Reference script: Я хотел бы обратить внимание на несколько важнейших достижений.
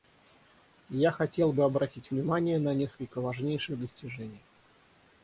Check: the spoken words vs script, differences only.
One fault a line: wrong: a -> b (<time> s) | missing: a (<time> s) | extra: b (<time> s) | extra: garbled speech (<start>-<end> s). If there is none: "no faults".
no faults